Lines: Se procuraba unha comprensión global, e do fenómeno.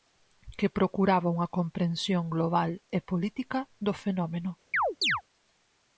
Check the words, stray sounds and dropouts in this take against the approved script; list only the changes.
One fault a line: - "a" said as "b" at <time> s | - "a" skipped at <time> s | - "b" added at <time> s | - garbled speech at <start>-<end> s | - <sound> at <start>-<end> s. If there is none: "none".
- "Se" said as "Que" at 0.6 s
- "política" added at 3.1 s
- chirp at 4.7-5.2 s